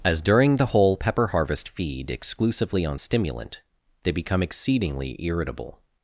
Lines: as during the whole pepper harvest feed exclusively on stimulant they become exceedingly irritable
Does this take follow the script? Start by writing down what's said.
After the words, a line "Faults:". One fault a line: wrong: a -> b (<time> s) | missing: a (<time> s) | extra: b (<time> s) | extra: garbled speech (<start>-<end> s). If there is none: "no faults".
as during the whole pepper harvest feed exclusively on stimulant they become exceedingly irritable
Faults:
no faults